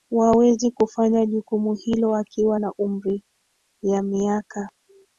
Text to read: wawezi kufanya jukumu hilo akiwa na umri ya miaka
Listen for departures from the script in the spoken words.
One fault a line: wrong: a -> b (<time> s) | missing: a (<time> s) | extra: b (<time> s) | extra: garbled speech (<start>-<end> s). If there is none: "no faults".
no faults